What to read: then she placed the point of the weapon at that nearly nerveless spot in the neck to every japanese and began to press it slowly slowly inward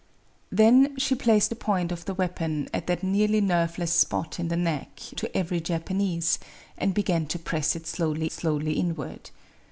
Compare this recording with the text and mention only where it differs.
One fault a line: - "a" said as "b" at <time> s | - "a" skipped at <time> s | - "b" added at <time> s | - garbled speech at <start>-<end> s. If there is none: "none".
none